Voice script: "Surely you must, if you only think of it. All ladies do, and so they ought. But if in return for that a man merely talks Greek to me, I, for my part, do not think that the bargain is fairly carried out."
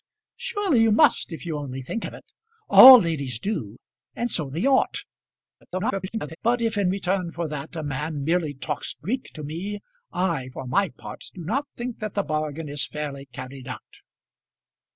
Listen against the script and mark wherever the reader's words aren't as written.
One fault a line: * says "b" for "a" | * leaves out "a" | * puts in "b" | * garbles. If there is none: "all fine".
* garbles